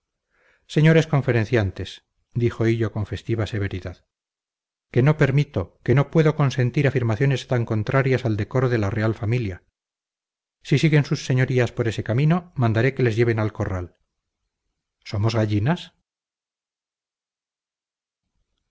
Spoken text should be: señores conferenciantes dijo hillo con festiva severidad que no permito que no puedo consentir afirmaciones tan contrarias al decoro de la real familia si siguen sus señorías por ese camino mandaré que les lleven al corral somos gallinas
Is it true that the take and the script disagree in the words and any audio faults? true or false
false